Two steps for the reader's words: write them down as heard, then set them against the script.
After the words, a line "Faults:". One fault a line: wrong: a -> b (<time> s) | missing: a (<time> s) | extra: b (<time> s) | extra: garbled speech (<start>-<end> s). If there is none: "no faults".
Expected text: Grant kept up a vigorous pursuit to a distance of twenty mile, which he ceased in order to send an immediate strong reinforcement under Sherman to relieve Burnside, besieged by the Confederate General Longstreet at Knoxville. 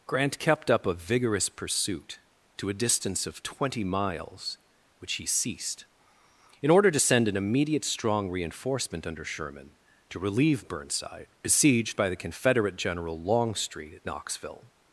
Grant kept up a vigorous pursuit to a distance of twenty miles, which he ceased in order to send an immediate strong reinforcement under Sherman to relieve Burnside, besieged by the Confederate General Longstreet at Knoxville.
Faults:
wrong: mile -> miles (3.8 s)